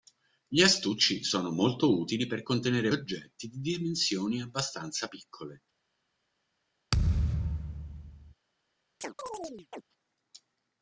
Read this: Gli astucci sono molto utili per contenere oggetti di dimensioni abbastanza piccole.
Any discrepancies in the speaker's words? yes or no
no